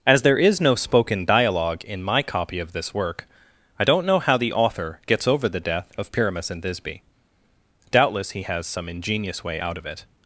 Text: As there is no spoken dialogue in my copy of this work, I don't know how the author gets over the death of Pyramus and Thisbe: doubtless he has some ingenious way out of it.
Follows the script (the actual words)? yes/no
yes